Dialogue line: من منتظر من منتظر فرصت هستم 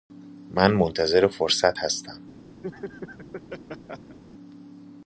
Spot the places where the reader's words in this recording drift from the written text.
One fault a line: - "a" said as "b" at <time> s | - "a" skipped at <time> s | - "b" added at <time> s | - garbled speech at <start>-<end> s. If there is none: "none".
- "من منتظر" skipped at 1.3 s